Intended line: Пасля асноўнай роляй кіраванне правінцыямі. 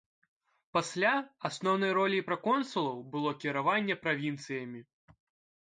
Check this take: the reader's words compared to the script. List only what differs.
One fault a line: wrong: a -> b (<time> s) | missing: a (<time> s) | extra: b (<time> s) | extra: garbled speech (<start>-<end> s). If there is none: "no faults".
extra: праконсулаў было (2.3 s)